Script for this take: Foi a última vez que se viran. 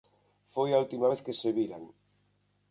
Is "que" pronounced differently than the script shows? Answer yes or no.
no